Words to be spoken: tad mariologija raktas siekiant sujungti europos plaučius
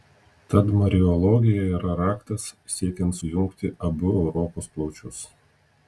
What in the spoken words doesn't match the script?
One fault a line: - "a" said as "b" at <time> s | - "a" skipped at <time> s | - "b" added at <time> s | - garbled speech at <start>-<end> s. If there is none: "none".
- "yra" added at 1.8 s
- "abu" added at 3.9 s